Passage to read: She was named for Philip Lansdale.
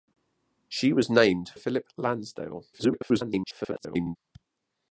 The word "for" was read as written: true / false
false